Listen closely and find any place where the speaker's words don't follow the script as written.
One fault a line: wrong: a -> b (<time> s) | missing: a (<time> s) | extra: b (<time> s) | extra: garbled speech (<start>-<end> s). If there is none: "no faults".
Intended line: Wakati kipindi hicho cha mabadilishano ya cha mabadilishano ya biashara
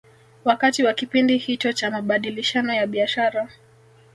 extra: wa (0.8 s)
missing: cha mabadilishano ya (2.9 s)